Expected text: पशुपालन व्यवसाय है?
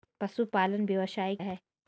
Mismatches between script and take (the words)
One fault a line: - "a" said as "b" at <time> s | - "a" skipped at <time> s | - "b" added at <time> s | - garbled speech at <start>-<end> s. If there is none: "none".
none